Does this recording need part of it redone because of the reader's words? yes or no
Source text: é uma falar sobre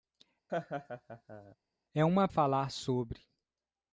no